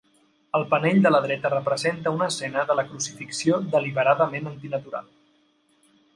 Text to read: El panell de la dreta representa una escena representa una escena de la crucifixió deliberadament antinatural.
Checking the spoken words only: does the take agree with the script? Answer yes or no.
no